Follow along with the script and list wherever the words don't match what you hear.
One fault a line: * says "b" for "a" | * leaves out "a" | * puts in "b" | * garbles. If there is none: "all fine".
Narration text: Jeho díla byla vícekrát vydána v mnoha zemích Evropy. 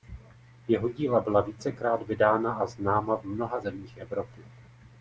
* puts in "a známa"